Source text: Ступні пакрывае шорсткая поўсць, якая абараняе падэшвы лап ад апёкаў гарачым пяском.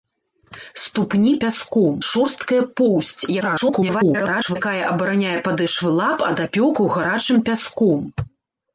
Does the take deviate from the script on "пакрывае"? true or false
true